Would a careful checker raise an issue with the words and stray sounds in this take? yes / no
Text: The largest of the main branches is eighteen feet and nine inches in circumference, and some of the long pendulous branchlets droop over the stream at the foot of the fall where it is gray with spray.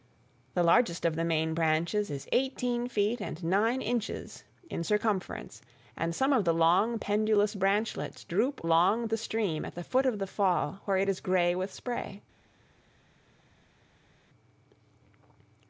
yes